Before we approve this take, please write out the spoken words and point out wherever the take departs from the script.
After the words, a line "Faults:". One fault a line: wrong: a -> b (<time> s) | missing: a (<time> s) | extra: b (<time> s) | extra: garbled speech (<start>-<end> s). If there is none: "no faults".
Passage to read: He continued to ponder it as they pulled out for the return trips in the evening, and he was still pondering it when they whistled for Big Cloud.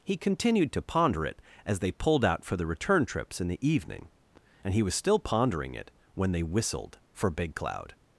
He continued to ponder it as they pulled out for the return trips in the evening, and he was still pondering it when they whistled for Big Cloud.
Faults:
no faults